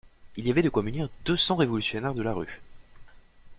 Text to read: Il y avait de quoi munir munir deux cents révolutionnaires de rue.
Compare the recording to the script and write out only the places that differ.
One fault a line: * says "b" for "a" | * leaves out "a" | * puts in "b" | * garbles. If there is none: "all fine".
* leaves out "munir"
* puts in "la"